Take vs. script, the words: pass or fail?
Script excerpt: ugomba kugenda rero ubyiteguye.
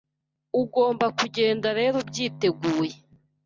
pass